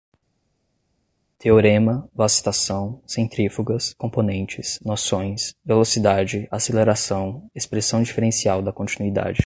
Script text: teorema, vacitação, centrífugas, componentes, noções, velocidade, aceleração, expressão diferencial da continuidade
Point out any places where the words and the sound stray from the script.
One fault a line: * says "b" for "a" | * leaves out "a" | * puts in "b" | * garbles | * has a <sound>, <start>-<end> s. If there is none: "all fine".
all fine